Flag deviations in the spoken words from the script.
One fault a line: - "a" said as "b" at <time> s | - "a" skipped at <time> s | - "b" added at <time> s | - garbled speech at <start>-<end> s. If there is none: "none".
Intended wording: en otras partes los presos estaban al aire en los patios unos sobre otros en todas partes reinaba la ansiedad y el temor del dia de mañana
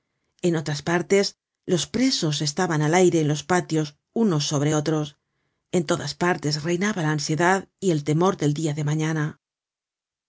none